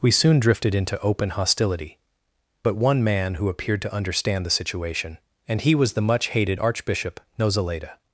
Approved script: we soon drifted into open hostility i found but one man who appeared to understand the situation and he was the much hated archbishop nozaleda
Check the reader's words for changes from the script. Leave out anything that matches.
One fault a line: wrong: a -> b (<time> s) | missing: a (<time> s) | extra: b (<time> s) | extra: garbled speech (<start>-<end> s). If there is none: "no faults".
missing: i found (2.0 s)